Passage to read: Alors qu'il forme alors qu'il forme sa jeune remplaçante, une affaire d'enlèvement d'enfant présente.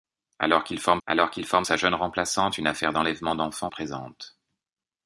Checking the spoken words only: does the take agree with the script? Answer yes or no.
yes